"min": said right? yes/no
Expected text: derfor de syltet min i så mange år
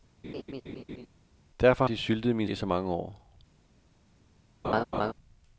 yes